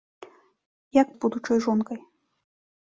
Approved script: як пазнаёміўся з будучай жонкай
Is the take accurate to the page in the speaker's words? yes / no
no